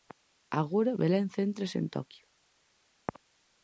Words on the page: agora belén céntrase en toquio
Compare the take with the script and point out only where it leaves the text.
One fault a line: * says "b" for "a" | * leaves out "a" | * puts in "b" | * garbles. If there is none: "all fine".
all fine